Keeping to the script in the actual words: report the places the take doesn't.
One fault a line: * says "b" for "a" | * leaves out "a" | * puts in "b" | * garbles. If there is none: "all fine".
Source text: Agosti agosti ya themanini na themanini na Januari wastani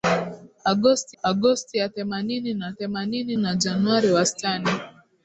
all fine